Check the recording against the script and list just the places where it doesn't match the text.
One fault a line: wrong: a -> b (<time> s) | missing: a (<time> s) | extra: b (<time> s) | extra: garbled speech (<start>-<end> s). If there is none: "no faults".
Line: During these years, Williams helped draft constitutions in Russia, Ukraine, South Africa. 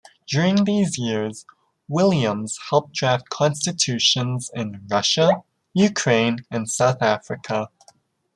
extra: and (6.5 s)